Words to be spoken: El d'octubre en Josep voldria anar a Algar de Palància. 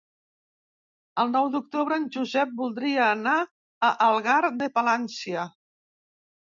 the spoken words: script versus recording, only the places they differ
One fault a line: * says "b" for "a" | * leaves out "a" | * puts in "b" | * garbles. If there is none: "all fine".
* puts in "nou"